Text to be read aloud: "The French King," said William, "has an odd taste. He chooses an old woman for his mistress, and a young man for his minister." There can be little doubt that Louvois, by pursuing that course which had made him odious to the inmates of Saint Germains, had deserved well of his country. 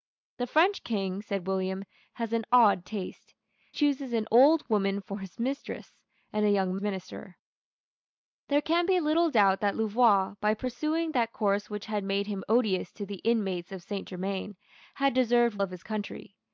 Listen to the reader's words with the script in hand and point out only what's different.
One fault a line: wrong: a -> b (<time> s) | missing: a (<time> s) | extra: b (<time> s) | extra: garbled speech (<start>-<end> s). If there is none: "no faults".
missing: He (3.4 s)
missing: man for his (6.8 s)
missing: well (15.6 s)